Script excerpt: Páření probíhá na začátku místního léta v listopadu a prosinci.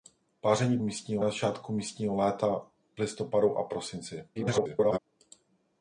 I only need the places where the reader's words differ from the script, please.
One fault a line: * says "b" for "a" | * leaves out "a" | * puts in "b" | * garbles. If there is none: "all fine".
* says "místního" for "probíhá"
* leaves out "v"
* garbles